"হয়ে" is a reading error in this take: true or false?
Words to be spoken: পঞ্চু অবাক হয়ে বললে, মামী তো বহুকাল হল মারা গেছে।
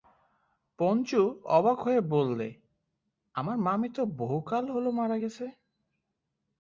false